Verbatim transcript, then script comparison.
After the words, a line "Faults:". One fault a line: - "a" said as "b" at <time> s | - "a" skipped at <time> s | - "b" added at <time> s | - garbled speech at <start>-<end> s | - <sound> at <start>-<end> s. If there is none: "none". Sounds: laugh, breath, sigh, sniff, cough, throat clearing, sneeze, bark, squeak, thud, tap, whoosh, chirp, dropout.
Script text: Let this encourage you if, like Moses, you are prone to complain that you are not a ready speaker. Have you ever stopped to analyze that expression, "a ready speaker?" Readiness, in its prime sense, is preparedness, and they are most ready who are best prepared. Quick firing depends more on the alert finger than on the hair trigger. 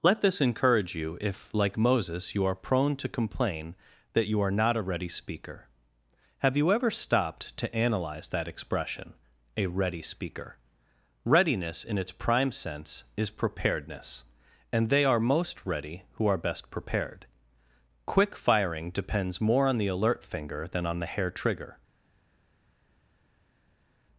Let this encourage you if, like Moses, you are prone to complain that you are not a ready speaker. Have you ever stopped to analyze that expression, "a ready speaker?" Readiness, in its prime sense, is preparedness, and they are most ready who are best prepared. Quick firing depends more on the alert finger than on the hair trigger.
Faults:
none